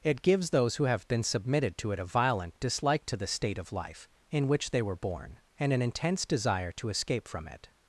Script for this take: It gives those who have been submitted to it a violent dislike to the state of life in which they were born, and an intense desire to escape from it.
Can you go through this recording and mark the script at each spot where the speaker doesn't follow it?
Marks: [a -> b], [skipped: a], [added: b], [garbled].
It gives those who have been submitted to it a violent dislike to the state of life in which they were born, and an intense desire to escape from it.